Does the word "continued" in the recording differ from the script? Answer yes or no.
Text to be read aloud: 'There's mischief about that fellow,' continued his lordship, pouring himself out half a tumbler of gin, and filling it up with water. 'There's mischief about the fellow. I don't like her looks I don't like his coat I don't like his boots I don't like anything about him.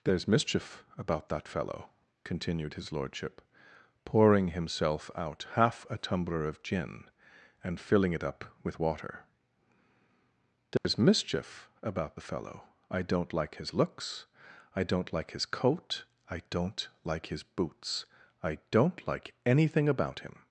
no